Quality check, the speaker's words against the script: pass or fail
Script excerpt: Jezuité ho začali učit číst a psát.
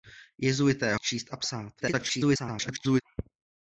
fail